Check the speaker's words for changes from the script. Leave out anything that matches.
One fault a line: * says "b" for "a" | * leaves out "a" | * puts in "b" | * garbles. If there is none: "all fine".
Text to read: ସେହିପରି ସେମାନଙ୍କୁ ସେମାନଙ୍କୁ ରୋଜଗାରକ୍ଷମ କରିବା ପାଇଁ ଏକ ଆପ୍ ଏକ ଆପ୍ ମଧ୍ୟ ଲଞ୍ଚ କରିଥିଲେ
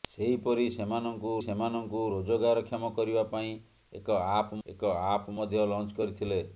all fine